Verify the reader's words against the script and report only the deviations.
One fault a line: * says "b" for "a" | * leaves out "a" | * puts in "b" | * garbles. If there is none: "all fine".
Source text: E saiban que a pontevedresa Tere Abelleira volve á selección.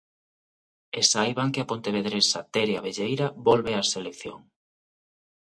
all fine